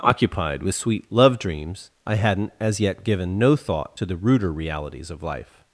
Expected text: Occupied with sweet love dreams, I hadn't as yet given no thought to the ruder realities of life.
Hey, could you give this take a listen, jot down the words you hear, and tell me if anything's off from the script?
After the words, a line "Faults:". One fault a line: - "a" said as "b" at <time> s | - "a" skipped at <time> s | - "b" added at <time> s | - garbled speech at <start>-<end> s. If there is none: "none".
Occupied with sweet love dreams, I hadn't as yet given no thought to the ruder realities of life.
Faults:
none